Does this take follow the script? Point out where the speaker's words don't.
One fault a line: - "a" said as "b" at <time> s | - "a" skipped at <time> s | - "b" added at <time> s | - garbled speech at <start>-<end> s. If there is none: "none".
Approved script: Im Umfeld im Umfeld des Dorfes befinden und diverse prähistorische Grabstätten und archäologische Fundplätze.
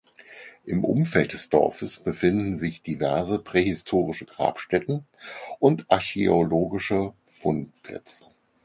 - "im Umfeld" skipped at 1.3 s
- "und" said as "sich" at 2.5 s